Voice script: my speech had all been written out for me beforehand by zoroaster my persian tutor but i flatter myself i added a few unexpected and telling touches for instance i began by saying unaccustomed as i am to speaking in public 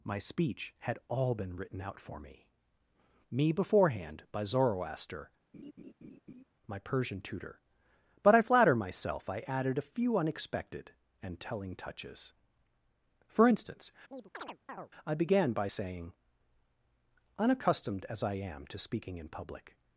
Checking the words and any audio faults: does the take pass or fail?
fail